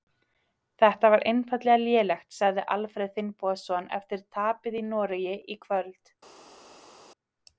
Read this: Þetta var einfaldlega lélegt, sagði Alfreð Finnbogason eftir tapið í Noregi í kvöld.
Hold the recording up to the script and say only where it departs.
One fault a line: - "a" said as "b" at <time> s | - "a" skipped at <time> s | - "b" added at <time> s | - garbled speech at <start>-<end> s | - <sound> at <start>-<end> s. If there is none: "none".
none